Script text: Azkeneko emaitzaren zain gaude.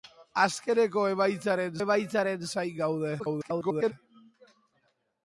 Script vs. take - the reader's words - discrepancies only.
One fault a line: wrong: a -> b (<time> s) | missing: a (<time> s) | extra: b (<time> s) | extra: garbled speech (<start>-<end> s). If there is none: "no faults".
extra: emaitzaren (1.8 s)
extra: garbled speech (3.2-3.9 s)